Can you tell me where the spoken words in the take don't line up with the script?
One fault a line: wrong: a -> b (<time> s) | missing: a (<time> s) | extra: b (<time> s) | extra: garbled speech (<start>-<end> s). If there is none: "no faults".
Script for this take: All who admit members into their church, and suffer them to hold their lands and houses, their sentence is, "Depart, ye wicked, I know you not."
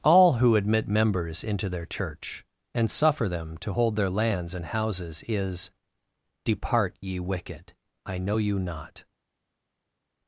missing: their sentence (5.2 s)